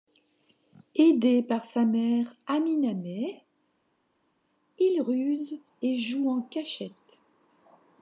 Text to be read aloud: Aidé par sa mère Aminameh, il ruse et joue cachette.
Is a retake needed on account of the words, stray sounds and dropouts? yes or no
yes